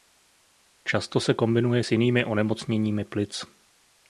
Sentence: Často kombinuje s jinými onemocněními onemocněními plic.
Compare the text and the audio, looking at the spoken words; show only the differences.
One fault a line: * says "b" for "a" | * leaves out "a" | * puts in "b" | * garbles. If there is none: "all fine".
* puts in "se"
* leaves out "onemocněními"